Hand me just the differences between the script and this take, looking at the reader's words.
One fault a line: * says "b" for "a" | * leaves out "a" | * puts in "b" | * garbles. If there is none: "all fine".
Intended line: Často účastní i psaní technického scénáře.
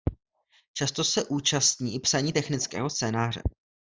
* puts in "se"